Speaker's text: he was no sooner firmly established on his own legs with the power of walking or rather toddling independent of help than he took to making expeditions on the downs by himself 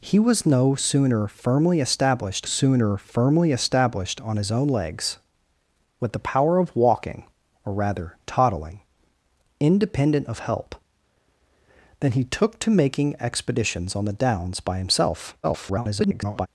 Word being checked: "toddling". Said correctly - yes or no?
yes